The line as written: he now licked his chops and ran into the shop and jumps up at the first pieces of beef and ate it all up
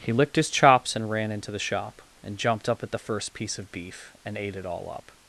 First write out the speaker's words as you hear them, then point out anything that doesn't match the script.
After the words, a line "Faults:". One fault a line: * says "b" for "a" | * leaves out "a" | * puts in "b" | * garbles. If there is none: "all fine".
he licked his chops and ran into the shop and jumped up at the first piece of beef and ate it all up
Faults:
* leaves out "now"
* says "jumped" for "jumps"
* says "piece" for "pieces"